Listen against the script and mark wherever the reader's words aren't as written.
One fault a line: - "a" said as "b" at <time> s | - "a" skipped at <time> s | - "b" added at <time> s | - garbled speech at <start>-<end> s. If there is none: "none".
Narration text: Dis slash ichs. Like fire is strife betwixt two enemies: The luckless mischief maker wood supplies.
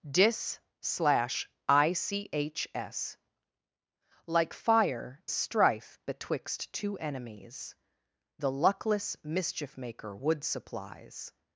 - "is" skipped at 5.2 s